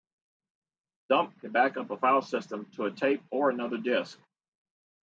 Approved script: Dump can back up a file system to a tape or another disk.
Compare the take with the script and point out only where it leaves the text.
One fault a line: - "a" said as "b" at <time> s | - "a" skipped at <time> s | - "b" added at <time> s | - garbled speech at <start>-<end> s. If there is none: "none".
none